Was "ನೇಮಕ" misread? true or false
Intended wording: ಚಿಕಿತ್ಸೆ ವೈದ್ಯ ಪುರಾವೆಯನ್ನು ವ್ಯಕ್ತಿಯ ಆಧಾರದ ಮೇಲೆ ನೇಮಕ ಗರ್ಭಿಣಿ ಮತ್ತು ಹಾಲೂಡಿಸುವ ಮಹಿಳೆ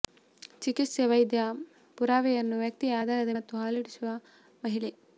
true